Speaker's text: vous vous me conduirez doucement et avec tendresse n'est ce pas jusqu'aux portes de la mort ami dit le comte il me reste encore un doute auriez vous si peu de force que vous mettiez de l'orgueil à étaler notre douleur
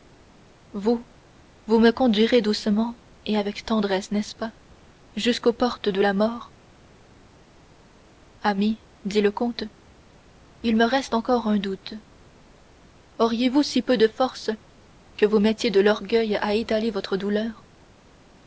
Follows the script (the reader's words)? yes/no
no